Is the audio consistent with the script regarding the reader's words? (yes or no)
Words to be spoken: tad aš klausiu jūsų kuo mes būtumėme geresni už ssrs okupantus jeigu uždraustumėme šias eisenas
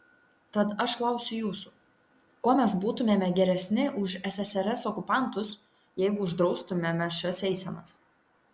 yes